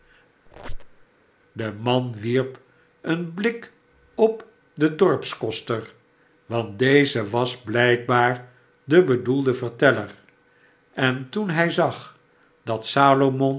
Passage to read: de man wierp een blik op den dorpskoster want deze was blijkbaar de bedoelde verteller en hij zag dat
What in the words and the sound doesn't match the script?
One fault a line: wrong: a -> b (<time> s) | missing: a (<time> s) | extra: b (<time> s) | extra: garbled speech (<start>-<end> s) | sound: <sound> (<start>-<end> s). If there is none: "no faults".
sound: squeak (0.5-1.1 s)
extra: toen (11.3 s)